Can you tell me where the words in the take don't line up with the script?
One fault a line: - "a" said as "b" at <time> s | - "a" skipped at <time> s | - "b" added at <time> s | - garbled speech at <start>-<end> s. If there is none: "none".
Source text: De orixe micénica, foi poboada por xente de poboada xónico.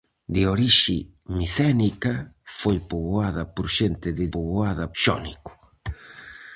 none